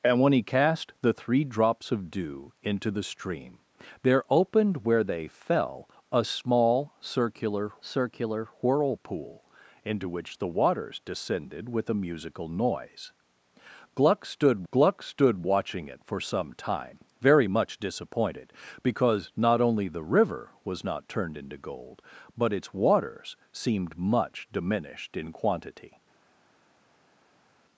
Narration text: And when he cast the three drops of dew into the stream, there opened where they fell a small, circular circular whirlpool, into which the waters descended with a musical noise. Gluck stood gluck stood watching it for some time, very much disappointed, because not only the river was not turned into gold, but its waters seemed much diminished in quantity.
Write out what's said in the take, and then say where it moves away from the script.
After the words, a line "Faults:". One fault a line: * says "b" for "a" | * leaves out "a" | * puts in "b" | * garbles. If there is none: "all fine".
And when he cast the three drops of dew into the stream, there opened where they fell a small, circular circular whirlpool, into which the waters descended with a musical noise. Gluck stood gluck stood watching it for some time, very much disappointed, because not only the river was not turned into gold, but its waters seemed much diminished in quantity.
Faults:
all fine